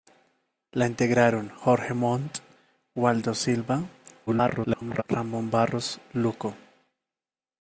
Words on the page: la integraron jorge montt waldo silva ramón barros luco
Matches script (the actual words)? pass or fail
fail